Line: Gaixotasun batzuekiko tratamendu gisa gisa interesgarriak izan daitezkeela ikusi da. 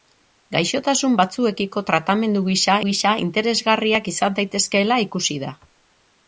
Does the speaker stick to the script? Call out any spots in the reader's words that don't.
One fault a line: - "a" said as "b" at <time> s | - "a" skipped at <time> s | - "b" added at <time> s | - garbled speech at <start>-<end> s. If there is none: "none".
none